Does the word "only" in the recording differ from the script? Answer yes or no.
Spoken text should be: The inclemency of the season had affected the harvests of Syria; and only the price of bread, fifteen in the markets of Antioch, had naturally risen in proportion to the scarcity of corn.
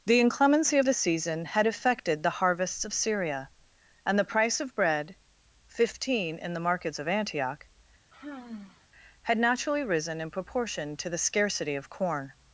yes